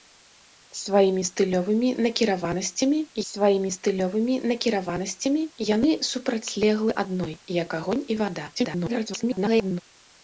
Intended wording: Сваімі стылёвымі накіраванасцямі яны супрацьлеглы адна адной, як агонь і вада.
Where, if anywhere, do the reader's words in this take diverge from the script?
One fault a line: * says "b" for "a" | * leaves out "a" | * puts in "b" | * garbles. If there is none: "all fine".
* puts in "сваімі стылёвымі накіраванасцямі"
* leaves out "адна"
* garbles